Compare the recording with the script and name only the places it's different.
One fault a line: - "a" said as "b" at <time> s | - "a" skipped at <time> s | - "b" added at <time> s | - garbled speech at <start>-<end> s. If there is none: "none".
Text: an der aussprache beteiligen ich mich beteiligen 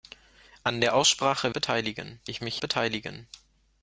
none